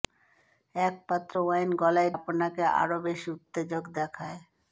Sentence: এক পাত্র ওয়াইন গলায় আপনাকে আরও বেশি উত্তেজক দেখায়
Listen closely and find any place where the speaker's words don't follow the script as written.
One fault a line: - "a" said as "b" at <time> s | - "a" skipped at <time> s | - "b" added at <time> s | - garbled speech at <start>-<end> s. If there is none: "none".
none